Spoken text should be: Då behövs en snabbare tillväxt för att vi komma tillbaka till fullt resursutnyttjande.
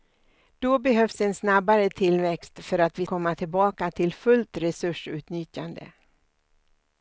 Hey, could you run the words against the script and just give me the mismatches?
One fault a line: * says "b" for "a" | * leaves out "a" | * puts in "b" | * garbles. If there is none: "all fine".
all fine